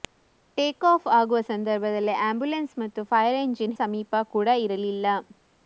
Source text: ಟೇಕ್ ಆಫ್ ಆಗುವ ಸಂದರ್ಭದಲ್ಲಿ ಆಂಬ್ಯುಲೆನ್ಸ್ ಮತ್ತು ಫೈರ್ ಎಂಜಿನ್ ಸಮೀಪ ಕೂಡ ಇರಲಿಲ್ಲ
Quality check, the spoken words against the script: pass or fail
pass